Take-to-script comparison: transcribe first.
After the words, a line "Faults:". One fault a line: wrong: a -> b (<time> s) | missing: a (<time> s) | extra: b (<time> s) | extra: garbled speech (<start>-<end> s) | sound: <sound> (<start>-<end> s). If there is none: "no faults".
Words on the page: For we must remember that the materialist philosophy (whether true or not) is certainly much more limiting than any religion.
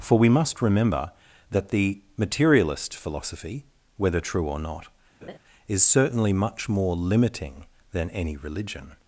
For we must remember that the materialist philosophy (whether true or not) is certainly much more limiting than any religion.
Faults:
sound: laugh (5.2-5.4 s)